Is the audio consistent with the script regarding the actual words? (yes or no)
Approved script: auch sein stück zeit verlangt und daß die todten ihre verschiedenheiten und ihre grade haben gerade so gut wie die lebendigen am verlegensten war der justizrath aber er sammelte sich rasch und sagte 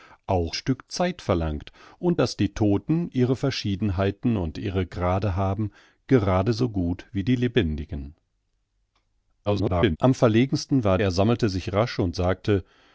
no